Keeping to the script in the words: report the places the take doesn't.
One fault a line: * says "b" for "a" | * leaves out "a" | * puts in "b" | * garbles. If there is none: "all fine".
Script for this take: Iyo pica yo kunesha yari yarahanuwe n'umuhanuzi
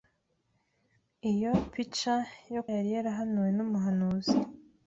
* leaves out "kunesha"